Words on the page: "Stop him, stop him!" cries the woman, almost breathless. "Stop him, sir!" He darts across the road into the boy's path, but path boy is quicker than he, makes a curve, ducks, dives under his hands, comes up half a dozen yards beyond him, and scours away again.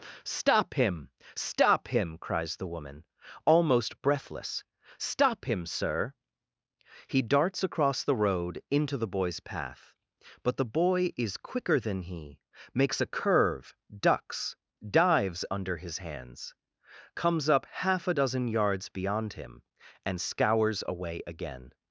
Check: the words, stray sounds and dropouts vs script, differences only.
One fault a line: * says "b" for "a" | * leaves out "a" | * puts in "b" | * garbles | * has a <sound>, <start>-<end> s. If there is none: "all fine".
* says "the" for "path"